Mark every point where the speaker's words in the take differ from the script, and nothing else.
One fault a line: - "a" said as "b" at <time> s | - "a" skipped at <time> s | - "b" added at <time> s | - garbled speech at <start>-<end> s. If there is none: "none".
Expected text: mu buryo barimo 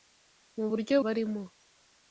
none